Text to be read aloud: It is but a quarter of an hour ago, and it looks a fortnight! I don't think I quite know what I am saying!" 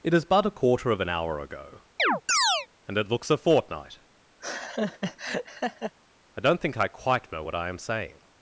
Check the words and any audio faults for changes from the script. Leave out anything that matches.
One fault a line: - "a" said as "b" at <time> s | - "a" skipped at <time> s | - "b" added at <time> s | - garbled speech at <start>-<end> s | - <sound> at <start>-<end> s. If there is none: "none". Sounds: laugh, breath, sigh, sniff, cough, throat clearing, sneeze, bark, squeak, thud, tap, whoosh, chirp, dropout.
- chirp at 2.0-2.7 s
- laugh at 4.4-5.9 s